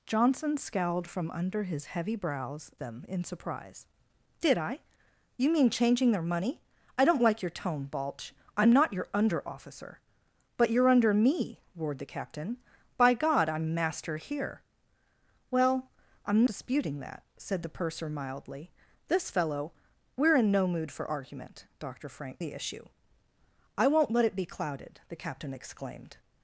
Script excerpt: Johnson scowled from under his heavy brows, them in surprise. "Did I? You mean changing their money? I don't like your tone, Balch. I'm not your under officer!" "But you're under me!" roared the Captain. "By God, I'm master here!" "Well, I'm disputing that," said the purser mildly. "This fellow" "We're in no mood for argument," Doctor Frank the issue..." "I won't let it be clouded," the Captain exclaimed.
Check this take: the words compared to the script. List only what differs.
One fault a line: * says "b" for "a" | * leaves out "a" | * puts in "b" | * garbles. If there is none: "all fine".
all fine